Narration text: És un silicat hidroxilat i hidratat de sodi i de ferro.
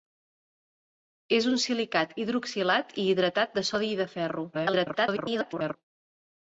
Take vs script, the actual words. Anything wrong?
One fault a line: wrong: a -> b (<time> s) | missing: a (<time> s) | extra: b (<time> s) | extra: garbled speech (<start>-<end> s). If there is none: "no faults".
extra: garbled speech (4.5-5.8 s)